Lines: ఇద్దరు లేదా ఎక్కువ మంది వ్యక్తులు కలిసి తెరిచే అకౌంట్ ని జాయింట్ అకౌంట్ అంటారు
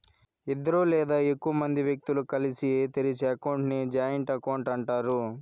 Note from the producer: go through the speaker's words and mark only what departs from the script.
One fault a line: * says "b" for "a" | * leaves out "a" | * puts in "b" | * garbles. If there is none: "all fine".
all fine